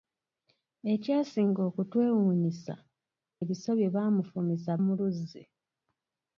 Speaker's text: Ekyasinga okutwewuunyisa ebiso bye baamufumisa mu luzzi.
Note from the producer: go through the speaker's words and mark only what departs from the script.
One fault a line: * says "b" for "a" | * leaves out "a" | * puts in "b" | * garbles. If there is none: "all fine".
all fine